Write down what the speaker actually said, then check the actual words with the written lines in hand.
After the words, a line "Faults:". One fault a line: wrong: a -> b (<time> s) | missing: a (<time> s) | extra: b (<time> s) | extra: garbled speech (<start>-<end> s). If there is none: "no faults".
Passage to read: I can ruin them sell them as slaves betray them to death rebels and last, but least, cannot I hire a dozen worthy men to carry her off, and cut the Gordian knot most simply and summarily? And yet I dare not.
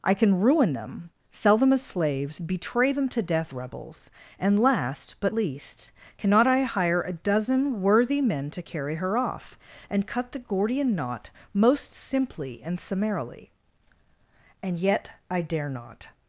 I can ruin them sell them as slaves betray them to death rebels and last, but least, cannot I hire a dozen worthy men to carry her off, and cut the Gordian knot most simply and summarily? And yet I dare not.
Faults:
no faults